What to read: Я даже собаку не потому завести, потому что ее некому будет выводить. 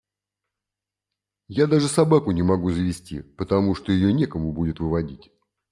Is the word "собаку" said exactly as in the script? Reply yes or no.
yes